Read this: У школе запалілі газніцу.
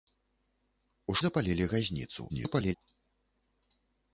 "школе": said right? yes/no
no